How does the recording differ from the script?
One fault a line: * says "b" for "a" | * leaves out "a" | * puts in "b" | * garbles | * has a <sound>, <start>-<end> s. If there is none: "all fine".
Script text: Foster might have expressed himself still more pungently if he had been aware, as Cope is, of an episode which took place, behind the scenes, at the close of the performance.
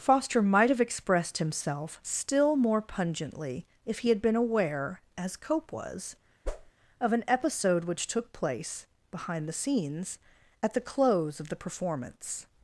* says "was" for "is"
* has a whoosh, 6.4-6.7 s